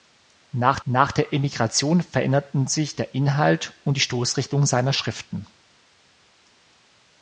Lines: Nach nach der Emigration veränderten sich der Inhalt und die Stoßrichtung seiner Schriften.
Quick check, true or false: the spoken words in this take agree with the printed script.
true